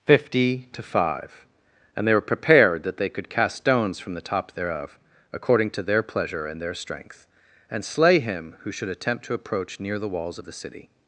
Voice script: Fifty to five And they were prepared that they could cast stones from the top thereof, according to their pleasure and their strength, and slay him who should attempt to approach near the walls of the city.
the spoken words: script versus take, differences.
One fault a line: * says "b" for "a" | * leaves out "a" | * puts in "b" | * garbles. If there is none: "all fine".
all fine